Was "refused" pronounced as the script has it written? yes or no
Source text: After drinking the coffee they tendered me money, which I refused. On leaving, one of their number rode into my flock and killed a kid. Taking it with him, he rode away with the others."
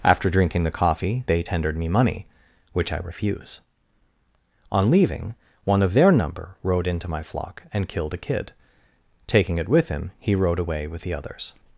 no